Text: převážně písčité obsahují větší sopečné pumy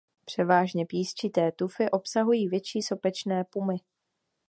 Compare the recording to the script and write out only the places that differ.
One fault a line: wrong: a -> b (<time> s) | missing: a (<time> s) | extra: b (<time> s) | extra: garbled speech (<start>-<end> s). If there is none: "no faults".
extra: tufy (1.5 s)